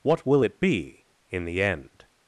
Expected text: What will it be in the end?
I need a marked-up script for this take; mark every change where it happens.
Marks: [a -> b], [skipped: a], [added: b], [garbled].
What will it be in the end?